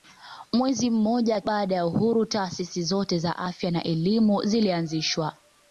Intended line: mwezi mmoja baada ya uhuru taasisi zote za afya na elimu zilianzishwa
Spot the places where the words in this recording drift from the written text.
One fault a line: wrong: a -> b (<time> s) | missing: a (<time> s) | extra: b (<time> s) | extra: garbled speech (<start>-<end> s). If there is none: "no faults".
no faults